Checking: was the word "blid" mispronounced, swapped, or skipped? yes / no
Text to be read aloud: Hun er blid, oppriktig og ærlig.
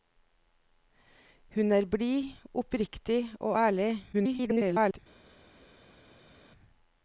no